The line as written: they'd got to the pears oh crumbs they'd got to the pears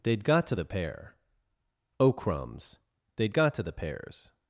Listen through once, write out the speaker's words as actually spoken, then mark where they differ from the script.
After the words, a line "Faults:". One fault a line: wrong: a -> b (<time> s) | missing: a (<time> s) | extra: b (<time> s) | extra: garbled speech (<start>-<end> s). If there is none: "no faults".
they'd got to the pear oh crumbs they'd got to the pears
Faults:
wrong: pears -> pear (0.7 s)